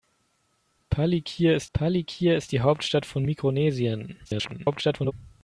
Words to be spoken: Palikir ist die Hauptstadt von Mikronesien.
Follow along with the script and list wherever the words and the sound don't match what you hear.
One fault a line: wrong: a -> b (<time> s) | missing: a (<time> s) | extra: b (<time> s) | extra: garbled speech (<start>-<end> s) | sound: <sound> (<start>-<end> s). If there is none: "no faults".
extra: palikir ist (1.7 s)
extra: garbled speech (4.2-5.1 s)